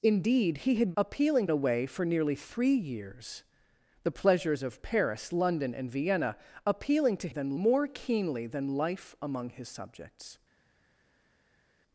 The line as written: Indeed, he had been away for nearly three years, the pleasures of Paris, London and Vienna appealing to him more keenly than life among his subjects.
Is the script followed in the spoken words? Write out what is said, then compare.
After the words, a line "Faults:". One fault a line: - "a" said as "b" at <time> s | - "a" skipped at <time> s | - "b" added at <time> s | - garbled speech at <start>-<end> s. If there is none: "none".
Indeed, he had appealing away for nearly three years, the pleasures of Paris, London and Vienna appealing to than more keenly than life among his subjects.
Faults:
- "been" said as "appealing" at 1.0 s
- "him" said as "than" at 7.3 s